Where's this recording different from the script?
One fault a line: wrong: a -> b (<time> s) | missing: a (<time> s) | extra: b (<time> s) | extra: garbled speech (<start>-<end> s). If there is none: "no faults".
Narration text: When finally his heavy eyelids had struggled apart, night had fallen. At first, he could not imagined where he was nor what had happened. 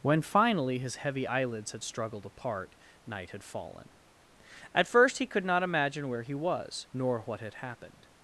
wrong: imagined -> imagine (5.6 s)